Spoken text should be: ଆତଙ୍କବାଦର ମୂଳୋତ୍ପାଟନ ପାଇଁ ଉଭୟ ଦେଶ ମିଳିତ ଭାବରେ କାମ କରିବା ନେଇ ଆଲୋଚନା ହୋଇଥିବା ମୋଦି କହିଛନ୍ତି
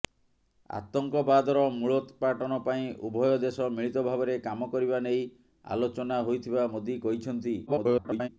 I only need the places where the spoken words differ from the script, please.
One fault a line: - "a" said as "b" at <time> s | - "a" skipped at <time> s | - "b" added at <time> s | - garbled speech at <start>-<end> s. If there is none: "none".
- garbled speech at 7.7-8.3 s